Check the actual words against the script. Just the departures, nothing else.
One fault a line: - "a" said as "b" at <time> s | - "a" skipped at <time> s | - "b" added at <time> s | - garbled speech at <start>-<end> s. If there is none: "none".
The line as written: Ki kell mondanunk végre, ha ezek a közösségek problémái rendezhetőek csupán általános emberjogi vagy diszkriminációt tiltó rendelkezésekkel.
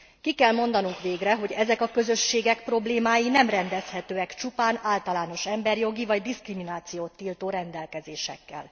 - "ha" said as "hogy" at 1.4 s
- "nem" added at 3.3 s